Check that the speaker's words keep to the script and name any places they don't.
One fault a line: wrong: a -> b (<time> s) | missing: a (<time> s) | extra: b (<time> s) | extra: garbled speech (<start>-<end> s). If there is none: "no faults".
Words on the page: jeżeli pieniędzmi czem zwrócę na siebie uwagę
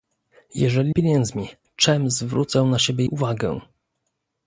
no faults